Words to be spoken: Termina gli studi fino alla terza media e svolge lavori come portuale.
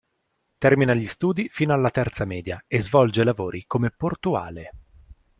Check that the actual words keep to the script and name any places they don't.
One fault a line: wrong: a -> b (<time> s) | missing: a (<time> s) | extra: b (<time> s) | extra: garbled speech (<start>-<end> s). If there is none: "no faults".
no faults